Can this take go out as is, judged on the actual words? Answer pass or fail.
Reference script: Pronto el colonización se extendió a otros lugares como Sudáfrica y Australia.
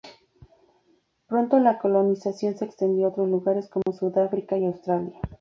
fail